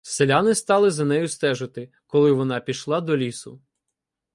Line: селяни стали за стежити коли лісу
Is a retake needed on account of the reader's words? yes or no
yes